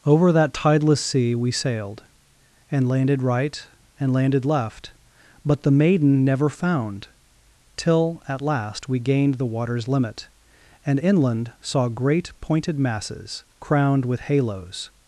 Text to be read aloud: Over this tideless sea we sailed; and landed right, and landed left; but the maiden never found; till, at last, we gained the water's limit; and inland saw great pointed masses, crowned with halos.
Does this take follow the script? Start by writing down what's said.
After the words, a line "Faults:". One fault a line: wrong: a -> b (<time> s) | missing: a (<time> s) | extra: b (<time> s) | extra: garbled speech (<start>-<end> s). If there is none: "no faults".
Over that tideless sea we sailed; and landed right, and landed left; but the maiden never found; till, at last, we gained the water's limit; and inland saw great pointed masses, crowned with halos.
Faults:
wrong: this -> that (0.3 s)